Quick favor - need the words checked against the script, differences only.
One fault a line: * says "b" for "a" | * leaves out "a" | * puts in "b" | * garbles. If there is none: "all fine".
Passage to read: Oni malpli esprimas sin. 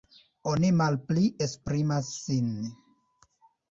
all fine